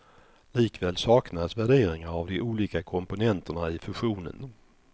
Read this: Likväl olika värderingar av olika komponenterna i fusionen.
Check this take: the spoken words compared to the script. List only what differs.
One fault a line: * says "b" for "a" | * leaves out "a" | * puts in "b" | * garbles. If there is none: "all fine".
* says "saknas" for "olika"
* puts in "de"